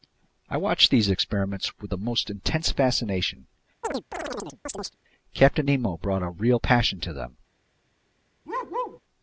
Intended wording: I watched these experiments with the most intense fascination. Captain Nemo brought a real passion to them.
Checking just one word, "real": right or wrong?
right